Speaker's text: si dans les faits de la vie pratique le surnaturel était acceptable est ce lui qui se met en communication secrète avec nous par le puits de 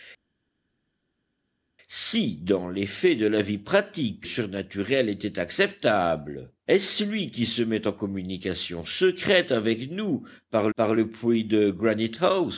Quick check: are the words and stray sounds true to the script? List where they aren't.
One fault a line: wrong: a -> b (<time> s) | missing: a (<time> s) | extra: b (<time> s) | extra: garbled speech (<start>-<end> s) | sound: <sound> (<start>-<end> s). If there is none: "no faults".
missing: le (4.2 s)
extra: par (10.7 s)